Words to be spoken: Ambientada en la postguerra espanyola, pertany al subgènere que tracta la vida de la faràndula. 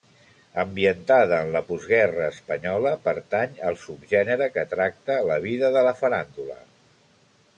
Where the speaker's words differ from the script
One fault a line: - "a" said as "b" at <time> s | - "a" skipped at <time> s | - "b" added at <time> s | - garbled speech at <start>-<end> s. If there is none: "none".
none